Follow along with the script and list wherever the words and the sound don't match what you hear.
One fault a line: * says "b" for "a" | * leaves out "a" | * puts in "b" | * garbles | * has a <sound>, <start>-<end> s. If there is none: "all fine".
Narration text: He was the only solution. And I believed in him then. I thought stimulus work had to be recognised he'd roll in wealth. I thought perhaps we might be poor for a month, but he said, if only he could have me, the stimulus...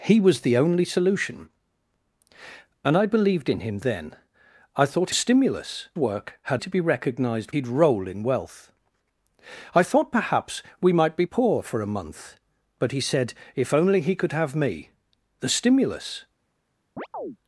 * has a chirp, 17.0-17.4 s